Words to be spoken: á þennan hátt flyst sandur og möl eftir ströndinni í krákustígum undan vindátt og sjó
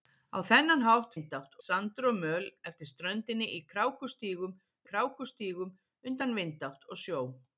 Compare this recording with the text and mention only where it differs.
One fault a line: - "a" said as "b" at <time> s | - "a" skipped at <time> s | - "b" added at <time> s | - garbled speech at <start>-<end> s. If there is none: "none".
- "flyst" said as "vindátt" at 1.1 s
- "krákustígum" added at 4.9 s